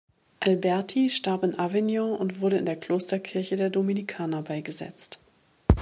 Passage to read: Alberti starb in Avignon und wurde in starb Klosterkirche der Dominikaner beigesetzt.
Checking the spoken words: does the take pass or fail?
fail